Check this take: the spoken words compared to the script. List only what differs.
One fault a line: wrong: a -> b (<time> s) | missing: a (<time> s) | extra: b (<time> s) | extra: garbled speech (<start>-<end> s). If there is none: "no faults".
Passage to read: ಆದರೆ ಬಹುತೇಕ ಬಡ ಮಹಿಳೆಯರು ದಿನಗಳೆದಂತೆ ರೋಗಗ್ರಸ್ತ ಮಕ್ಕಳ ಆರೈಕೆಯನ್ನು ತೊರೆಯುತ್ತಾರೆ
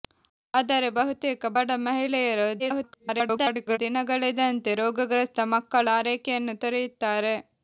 extra: garbled speech (2.6-3.8 s)